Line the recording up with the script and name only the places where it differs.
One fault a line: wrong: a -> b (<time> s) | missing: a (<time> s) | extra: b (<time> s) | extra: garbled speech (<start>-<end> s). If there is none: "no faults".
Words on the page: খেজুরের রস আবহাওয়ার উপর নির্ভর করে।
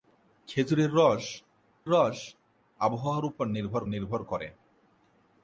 extra: রস (1.9 s)
extra: নির্ভর (3.8 s)